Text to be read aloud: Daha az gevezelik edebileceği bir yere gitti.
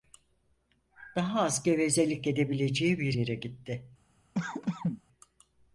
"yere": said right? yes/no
yes